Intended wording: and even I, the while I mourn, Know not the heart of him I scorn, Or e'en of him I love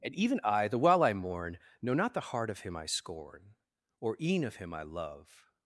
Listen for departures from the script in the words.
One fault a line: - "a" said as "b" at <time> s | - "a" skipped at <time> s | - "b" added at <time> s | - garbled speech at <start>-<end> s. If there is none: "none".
none